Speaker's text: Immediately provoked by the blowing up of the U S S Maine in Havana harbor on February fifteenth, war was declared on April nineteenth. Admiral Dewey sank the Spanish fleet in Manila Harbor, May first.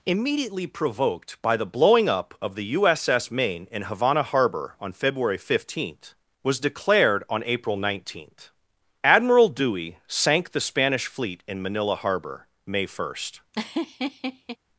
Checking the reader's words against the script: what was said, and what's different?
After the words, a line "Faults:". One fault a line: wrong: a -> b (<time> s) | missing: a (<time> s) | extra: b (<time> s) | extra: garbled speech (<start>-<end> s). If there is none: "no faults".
Immediately provoked by the blowing up of the U S S Maine in Havana harbor on February fifteenth, was declared on April nineteenth. Admiral Dewey sank the Spanish fleet in Manila Harbor, May first.
Faults:
missing: war (6.2 s)